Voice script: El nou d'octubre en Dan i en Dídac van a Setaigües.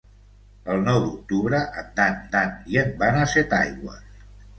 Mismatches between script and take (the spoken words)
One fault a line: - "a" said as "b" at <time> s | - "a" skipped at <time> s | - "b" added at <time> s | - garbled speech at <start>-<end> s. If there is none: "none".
- "Dan" added at 2.4 s
- "Dídac" skipped at 2.9 s